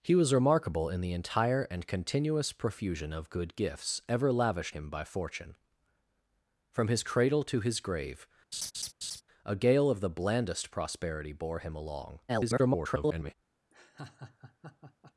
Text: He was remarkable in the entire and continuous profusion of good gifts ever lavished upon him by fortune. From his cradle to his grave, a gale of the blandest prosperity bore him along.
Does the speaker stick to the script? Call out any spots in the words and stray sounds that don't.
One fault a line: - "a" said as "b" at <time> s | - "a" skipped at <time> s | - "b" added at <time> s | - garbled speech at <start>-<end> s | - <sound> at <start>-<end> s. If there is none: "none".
- "upon" skipped at 4.8 s
- laugh at 8.5-9.2 s
- garbled speech at 12.3-13.3 s
- laugh at 13.7-15.1 s